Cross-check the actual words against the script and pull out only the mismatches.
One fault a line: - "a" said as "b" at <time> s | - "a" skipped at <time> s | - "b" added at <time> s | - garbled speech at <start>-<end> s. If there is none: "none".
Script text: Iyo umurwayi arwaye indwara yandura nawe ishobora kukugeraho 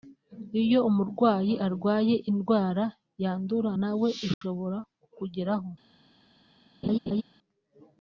none